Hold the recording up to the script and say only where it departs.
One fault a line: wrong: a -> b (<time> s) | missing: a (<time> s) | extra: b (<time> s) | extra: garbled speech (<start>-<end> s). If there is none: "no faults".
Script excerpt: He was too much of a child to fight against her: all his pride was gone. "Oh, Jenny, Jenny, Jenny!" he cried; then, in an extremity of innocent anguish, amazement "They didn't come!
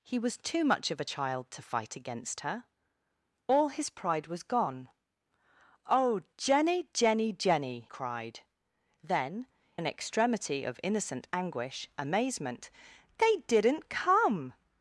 missing: he (7.9 s)
missing: in (9.5 s)